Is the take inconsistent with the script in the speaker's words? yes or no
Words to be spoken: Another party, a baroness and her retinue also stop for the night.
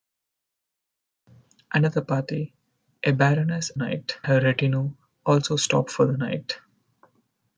yes